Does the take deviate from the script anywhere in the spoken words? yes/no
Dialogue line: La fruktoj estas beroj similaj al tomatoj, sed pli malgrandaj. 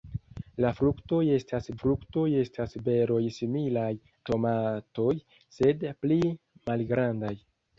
yes